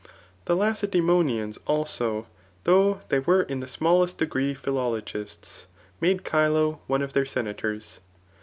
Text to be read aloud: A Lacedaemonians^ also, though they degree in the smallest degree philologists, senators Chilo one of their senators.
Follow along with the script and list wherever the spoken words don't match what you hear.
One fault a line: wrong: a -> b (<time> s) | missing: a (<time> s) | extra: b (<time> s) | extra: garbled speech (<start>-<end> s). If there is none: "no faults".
wrong: A -> The (0.5 s)
wrong: degree -> were (3.2 s)
wrong: senators -> made (6.0 s)